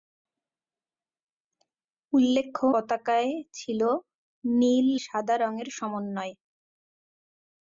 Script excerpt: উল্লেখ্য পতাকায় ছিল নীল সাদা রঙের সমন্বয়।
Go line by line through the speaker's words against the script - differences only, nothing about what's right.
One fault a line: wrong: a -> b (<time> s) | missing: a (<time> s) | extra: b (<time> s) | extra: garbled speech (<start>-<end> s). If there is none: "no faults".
no faults